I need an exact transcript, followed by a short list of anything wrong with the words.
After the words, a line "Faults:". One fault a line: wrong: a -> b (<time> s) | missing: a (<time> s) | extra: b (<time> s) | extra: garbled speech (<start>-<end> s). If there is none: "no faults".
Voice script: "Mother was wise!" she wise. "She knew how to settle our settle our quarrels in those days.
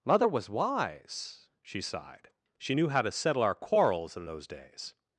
"Mother was wise!" she sighed. "She knew how to settle our quarrels in those days.
Faults:
wrong: wise -> sighed (1.8 s)
missing: settle our (3.6 s)